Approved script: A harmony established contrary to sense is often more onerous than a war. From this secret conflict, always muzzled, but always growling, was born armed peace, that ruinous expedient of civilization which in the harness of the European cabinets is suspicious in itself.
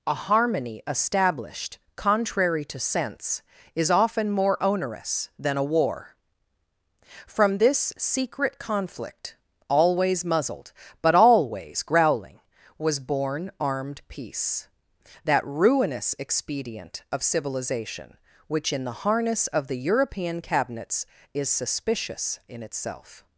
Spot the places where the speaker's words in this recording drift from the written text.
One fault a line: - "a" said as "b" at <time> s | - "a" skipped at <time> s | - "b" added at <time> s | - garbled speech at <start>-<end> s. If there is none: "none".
none